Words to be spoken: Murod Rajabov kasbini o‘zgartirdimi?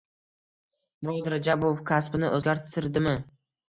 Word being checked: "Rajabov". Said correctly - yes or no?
yes